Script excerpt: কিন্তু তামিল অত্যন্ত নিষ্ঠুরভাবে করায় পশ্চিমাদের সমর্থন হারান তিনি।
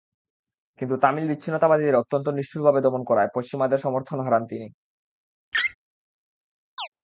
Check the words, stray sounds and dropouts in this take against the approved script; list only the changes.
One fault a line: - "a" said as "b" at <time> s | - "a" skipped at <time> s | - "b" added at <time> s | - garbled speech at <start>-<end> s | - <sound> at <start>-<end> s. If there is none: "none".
- "বিচ্ছিন্নতাবাদীদের" added at 1.3 s
- "দমন" added at 2.8 s
- laugh at 5.5-5.8 s
- chirp at 6.8-6.9 s